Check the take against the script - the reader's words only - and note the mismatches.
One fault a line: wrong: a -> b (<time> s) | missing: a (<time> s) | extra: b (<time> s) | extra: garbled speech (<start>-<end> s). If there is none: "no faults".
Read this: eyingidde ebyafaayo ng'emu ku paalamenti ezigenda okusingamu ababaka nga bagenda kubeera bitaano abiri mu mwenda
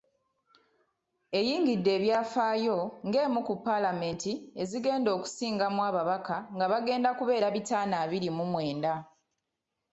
no faults